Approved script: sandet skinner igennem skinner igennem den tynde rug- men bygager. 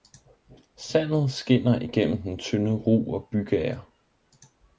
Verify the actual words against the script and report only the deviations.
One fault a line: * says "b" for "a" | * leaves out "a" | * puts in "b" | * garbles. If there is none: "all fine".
* leaves out "skinner igennem"
* says "og" for "men"